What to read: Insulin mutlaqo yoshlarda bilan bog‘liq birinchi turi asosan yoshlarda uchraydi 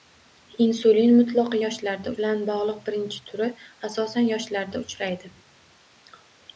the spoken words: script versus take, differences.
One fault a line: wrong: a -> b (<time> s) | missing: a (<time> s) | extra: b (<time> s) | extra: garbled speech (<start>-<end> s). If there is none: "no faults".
no faults